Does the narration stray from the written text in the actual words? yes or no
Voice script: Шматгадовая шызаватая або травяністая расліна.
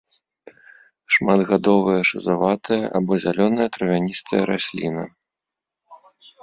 yes